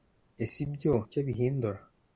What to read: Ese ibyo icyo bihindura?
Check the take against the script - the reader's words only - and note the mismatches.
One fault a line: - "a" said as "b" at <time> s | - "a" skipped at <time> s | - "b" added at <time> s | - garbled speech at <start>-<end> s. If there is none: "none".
none